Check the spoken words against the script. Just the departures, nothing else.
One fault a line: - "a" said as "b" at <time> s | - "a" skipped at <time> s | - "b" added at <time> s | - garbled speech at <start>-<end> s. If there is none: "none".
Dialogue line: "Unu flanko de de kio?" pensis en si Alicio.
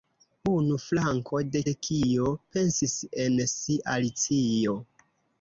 none